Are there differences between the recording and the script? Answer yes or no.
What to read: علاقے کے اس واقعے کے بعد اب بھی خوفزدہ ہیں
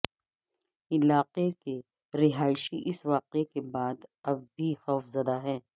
yes